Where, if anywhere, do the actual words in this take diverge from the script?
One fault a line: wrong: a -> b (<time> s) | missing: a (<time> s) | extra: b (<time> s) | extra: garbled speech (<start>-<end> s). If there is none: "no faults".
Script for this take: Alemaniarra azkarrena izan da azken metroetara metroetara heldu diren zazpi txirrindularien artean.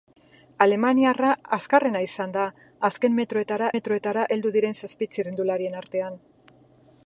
no faults